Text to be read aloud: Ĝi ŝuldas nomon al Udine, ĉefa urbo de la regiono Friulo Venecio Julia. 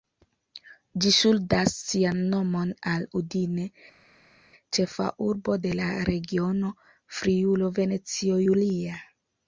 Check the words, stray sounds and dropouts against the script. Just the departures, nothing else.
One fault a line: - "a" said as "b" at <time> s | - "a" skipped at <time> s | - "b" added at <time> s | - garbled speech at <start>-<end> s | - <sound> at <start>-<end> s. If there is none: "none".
- "sian" added at 1.9 s